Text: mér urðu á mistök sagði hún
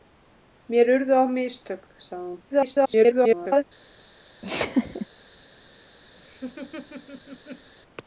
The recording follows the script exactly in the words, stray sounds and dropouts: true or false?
false